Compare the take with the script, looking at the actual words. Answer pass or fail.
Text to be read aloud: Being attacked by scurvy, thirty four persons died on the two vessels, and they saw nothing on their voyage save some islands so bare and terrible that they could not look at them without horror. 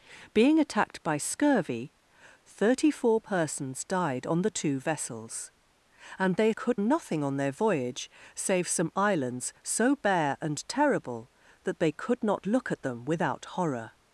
fail